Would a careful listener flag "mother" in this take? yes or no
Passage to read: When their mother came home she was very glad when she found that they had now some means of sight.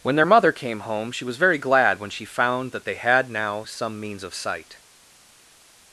no